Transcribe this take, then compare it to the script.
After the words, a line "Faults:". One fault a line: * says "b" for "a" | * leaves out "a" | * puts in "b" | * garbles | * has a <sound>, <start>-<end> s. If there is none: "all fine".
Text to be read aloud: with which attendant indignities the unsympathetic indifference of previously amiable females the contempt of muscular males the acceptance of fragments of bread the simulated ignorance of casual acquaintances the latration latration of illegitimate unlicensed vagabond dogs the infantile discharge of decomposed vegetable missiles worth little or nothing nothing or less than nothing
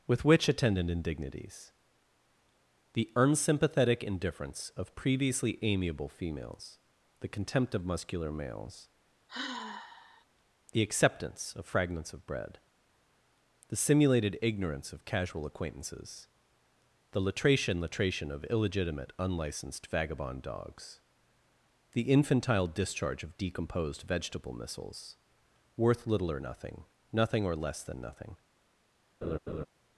with which attendant indignities the unsympathetic indifference of previously amiable females the contempt of muscular males the acceptance of fragments of bread the simulated ignorance of casual acquaintances the latration latration of illegitimate unlicensed vagabond dogs the infantile discharge of decomposed vegetable missiles worth little or nothing nothing or less than nothing
Faults:
* has a sigh, 9.3-10.2 s
* has a laugh, 29.2-29.7 s